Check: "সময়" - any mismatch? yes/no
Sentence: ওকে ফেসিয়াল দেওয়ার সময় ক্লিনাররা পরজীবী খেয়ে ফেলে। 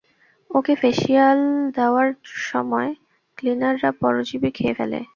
no